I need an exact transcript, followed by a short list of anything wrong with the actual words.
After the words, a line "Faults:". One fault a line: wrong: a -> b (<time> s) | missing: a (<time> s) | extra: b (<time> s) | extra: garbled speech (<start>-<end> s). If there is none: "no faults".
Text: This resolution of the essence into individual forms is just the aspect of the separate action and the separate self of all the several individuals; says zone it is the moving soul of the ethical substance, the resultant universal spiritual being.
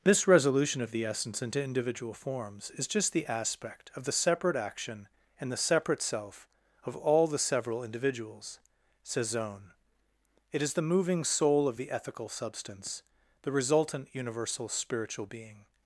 This resolution of the essence into individual forms is just the aspect of the separate action and the separate self of all the several individuals; says zone it is the moving soul of the ethical substance, the resultant universal spiritual being.
Faults:
no faults